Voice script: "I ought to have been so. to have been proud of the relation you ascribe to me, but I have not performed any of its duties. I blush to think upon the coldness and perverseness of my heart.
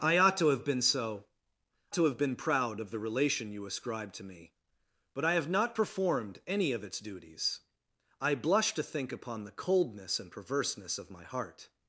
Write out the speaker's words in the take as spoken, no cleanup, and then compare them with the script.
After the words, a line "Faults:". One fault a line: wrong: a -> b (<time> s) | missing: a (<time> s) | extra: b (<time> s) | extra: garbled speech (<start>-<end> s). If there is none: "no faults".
"I ought to have been so. to have been proud of the relation you ascribe to me, but I have not performed any of its duties. I blush to think upon the coldness and perverseness of my heart.
Faults:
no faults